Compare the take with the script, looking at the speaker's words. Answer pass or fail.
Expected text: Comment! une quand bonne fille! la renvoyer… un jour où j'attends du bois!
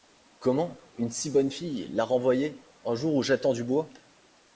fail